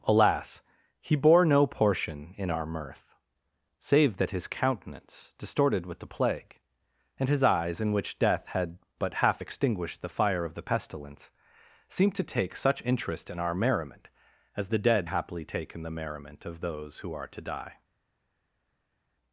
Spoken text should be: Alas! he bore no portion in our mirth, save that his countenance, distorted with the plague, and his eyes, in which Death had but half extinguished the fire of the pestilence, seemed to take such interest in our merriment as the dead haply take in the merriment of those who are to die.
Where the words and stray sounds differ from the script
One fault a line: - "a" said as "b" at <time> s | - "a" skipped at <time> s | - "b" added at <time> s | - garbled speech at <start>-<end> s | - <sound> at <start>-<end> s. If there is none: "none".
none